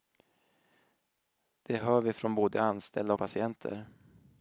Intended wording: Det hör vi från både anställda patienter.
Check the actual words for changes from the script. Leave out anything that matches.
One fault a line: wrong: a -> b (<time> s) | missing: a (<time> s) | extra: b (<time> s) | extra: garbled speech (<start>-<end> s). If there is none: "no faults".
no faults